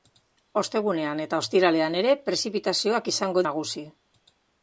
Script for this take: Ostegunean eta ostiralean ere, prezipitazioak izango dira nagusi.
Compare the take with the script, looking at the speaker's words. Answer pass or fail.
fail